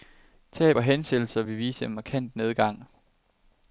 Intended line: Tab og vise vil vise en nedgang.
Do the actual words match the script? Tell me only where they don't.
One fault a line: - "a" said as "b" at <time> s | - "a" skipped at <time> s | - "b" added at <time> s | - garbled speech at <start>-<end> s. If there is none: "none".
- "vise" said as "hensættelser" at 0.8 s
- "markant" added at 1.9 s